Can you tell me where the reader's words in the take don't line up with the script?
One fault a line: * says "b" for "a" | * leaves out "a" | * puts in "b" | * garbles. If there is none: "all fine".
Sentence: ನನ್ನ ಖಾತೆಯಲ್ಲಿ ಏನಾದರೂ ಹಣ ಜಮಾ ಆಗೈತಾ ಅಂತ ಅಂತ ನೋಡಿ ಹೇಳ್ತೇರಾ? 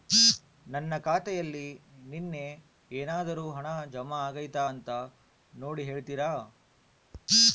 * puts in "ನಿನ್ನೆ"
* leaves out "ಅಂತ"